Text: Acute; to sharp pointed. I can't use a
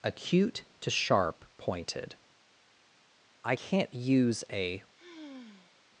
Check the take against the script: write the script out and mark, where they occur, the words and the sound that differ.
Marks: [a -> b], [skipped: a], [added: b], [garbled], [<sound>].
Acute; to sharp pointed. I can't use a [sigh]